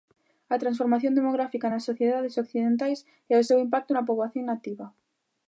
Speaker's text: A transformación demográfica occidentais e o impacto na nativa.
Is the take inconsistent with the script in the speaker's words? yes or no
yes